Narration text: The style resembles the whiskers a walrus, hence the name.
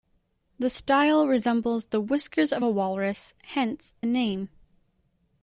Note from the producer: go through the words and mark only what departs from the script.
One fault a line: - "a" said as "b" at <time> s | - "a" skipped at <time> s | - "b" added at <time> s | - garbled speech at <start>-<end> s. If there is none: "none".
- "of" added at 2.5 s